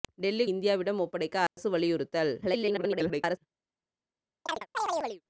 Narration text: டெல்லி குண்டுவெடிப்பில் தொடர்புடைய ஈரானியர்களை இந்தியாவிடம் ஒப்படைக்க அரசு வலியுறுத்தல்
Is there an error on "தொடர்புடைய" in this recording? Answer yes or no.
yes